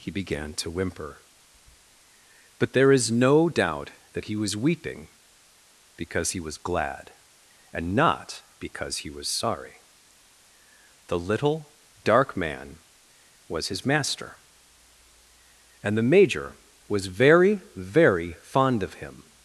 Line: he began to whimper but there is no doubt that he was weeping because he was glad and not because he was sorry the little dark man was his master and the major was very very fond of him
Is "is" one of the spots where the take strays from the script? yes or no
no